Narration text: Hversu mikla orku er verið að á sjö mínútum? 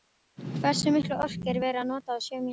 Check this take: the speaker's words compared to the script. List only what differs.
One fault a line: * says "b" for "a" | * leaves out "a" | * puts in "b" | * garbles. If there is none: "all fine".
* puts in "nota"